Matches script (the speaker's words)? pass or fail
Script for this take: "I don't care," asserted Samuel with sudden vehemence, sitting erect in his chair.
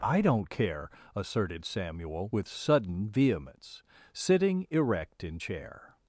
fail